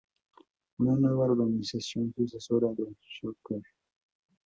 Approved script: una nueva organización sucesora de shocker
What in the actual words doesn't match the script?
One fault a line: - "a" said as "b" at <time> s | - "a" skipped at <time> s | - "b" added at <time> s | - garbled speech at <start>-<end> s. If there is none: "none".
none